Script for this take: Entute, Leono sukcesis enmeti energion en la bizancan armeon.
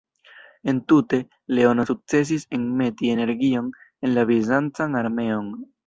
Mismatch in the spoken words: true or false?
false